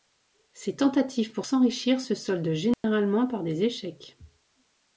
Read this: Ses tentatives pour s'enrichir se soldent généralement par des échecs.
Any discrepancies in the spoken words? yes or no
no